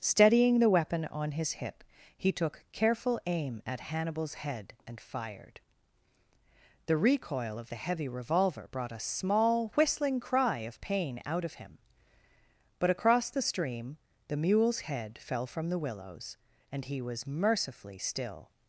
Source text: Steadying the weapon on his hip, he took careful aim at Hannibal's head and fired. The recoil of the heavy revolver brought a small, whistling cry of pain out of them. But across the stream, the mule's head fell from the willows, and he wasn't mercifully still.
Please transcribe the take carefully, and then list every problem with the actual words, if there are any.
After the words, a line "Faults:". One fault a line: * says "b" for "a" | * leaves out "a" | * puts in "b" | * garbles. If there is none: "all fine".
Steadying the weapon on his hip, he took careful aim at Hannibal's head and fired. The recoil of the heavy revolver brought a small, whistling cry of pain out of him. But across the stream, the mule's head fell from the willows, and he was mercifully still.
Faults:
* says "him" for "them"
* says "was" for "wasn't"